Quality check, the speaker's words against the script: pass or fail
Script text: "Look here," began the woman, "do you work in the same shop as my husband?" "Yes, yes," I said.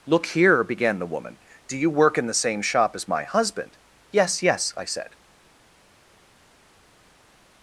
pass